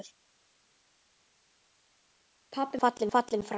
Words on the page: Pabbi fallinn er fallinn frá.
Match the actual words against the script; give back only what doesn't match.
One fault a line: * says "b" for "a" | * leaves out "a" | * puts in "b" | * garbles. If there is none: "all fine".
all fine